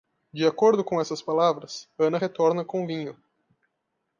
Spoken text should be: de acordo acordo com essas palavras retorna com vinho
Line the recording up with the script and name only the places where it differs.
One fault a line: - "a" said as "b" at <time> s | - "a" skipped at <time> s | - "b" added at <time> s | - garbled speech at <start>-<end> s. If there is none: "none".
- "acordo" skipped at 0.8 s
- "ana" added at 1.9 s